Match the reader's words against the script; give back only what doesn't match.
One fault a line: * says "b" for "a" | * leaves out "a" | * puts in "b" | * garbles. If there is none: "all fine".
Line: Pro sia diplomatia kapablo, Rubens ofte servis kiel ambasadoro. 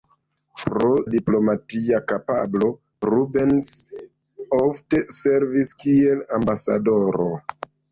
* leaves out "sia"